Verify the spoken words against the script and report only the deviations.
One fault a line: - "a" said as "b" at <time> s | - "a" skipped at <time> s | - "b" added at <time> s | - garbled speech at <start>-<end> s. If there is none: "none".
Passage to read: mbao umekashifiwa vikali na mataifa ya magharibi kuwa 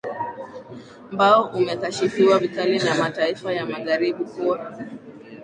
none